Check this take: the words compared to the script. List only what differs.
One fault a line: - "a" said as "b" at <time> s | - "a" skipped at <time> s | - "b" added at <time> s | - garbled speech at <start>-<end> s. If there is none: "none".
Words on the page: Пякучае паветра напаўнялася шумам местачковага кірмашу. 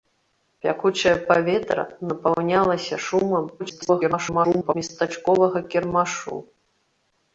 - garbled speech at 3.6-4.7 s